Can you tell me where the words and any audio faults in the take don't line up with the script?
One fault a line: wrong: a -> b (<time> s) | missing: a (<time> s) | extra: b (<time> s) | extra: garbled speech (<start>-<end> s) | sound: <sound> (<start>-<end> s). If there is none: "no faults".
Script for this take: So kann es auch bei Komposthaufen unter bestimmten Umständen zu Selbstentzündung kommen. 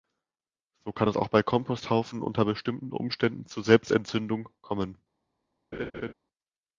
sound: laugh (5.7-6.1 s)